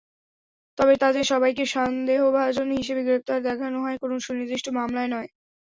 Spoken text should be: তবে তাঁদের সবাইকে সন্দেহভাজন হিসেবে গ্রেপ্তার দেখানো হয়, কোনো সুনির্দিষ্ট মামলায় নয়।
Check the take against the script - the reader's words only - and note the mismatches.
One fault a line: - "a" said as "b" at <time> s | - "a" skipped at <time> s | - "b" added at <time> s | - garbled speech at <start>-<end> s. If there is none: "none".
none